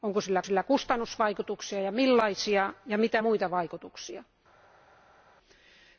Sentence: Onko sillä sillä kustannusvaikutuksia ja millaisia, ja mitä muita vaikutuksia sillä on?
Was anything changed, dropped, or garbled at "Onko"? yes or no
no